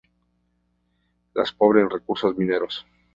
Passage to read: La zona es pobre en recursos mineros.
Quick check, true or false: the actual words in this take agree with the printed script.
false